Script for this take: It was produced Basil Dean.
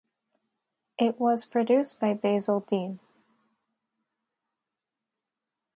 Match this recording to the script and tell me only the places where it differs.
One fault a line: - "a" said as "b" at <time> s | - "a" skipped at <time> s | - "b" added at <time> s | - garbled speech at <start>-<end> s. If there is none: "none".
- "by" added at 2.0 s